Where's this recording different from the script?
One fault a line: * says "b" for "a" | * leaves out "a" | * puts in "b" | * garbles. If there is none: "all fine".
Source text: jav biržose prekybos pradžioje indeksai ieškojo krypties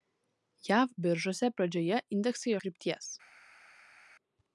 * leaves out "prekybos"
* leaves out "ieškojo"